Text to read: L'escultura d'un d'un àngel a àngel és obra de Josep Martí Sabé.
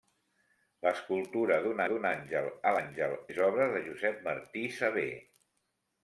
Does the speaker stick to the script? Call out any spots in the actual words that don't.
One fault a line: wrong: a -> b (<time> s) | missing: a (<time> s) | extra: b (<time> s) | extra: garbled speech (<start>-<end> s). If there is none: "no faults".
no faults